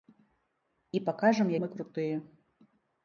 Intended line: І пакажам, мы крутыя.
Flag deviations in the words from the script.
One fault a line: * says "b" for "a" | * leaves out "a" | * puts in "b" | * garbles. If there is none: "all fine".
all fine